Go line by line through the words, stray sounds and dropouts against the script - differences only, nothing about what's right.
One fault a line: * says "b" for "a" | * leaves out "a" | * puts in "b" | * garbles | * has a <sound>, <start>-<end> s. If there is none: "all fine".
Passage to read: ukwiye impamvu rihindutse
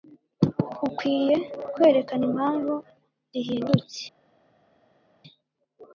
* puts in "kwerekana"